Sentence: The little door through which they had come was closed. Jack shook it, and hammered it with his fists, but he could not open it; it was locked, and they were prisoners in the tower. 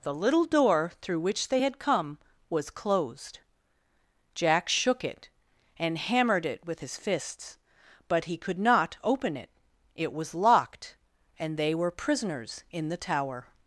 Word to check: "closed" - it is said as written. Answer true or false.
true